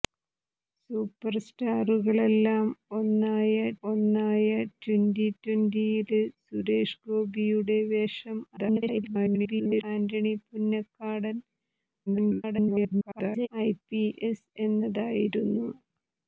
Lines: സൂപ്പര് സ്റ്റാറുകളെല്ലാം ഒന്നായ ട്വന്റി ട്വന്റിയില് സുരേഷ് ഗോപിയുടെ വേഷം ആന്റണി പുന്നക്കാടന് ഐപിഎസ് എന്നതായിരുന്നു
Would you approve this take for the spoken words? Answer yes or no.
no